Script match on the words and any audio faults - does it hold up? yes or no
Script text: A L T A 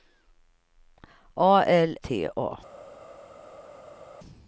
yes